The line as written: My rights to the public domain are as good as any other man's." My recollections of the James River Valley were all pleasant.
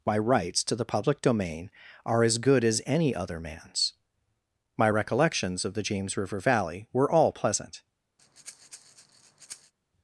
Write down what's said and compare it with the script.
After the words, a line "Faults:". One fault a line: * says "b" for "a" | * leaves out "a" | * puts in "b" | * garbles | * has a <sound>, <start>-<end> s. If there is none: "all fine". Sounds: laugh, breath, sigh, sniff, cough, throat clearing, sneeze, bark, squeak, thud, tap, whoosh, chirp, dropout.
My rights to the public domain are as good as any other man's." My recollections of the James River Valley were all pleasant.
Faults:
* has a breath, 8.2-9.7 s